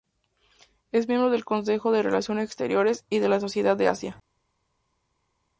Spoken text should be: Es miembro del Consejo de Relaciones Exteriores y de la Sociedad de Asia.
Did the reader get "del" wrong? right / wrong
right